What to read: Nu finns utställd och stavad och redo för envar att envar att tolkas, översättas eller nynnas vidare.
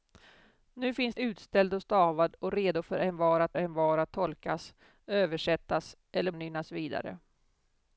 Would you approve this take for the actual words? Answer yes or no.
yes